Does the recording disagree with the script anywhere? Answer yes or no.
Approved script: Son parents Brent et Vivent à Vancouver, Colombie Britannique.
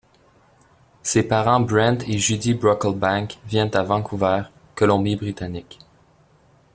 yes